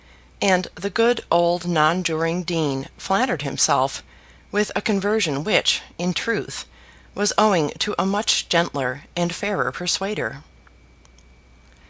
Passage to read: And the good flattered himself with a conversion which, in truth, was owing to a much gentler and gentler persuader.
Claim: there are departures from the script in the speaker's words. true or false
true